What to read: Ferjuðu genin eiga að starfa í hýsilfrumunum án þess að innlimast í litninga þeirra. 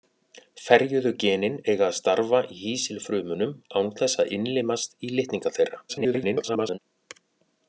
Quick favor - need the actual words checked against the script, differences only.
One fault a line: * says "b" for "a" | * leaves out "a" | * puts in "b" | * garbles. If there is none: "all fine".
* garbles